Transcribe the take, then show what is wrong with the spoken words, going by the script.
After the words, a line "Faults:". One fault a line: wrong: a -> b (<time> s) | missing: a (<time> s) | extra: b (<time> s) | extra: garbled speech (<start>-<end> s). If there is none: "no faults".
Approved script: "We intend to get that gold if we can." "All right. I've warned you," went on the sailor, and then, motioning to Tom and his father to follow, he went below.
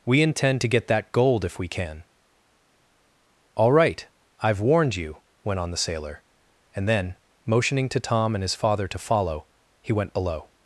"We intend to get that gold if we can." "All right. I've warned you," went on the sailor, and then, motioning to Tom and his father to follow, he went below.
Faults:
no faults